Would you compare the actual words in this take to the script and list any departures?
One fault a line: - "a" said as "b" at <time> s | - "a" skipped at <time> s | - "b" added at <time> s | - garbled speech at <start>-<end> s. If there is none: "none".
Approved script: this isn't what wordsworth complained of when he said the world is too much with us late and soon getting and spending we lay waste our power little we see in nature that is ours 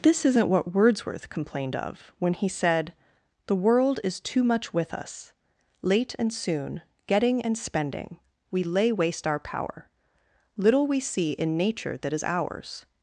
none